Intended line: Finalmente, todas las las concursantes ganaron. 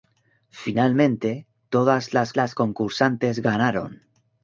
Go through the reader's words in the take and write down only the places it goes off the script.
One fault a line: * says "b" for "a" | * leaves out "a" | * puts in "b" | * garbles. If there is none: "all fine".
all fine